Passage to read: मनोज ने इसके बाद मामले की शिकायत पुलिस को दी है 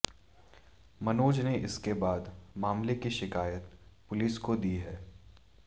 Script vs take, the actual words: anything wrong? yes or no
no